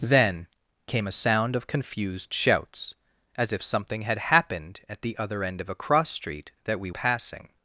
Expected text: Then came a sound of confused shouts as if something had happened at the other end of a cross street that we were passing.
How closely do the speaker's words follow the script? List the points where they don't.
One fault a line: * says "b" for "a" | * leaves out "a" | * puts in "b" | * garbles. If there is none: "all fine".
* leaves out "were"